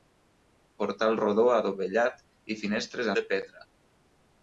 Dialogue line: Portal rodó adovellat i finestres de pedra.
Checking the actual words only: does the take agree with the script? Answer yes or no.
yes